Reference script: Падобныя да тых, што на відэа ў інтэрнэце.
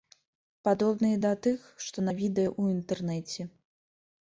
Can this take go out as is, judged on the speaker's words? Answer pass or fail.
pass